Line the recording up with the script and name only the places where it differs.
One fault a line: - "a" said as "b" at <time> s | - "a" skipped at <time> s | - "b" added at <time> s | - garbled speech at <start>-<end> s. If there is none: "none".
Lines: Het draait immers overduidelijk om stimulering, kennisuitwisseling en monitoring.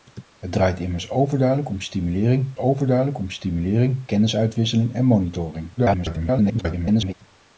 - "overduidelijk om stimulering" added at 2.6 s
- garbled speech at 5.8-7.1 s